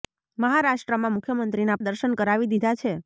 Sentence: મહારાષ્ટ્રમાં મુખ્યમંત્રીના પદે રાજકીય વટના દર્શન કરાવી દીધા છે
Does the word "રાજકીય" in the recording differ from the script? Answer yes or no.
yes